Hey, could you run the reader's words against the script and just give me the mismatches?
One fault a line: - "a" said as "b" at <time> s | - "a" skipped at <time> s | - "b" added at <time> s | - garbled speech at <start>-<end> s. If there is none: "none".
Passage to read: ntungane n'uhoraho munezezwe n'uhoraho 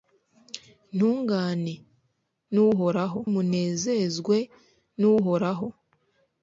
none